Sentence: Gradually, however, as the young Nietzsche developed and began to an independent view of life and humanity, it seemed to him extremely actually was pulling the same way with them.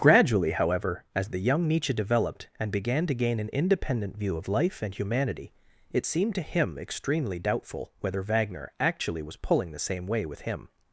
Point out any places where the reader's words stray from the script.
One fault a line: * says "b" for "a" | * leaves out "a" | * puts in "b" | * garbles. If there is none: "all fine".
* puts in "gain"
* puts in "doubtful whether Wagner"
* says "him" for "them"